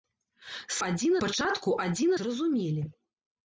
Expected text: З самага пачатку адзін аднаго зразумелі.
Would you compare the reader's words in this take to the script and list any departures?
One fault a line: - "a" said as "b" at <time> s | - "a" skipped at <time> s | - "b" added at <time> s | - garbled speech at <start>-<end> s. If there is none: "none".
- "самага" said as "адзін" at 0.9 s
- "аднаго" skipped at 2.1 s